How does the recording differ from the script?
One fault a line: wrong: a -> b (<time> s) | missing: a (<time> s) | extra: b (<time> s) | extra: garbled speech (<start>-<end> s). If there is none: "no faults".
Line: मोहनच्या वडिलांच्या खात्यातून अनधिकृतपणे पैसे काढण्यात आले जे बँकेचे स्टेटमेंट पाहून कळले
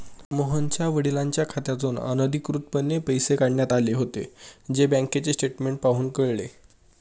extra: होते (3.9 s)